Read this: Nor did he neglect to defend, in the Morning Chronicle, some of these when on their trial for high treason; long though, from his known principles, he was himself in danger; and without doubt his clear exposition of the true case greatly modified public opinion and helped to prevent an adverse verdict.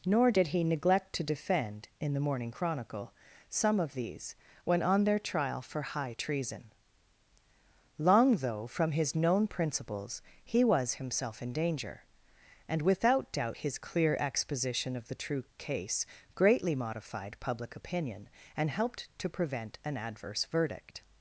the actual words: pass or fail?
pass